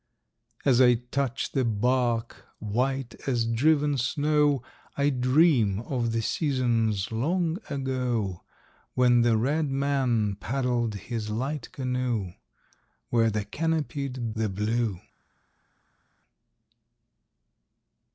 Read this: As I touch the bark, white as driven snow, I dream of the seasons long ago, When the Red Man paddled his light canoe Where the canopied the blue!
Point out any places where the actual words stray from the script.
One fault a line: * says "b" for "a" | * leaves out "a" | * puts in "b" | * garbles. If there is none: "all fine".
all fine